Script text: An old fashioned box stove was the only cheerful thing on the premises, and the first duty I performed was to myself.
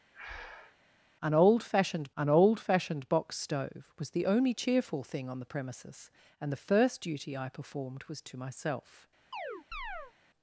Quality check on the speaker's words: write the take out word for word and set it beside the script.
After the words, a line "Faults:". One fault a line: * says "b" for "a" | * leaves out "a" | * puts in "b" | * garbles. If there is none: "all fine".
An old fashioned an old fashioned box stove was the only cheerful thing on the premises, and the first duty I performed was to myself.
Faults:
* puts in "an old fashioned"